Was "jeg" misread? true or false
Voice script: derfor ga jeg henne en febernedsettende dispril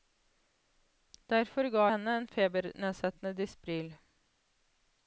true